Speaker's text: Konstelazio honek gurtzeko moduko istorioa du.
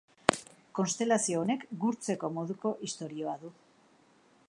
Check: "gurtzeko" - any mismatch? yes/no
no